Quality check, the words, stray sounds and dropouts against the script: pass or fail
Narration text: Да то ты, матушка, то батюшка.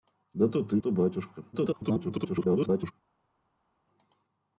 fail